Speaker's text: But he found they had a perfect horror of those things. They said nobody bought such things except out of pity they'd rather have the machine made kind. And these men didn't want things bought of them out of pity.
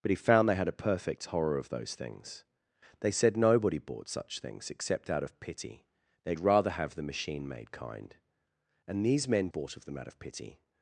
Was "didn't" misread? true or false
true